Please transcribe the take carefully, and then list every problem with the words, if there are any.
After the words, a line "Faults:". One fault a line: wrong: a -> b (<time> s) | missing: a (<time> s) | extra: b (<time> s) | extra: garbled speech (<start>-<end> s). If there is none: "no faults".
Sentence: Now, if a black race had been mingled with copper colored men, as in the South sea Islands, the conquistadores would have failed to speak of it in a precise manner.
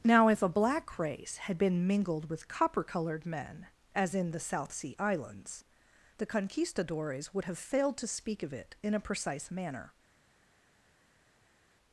Now, if a black race had been mingled with copper colored men, as in the South sea Islands, the conquistadores would have failed to speak of it in a precise manner.
Faults:
no faults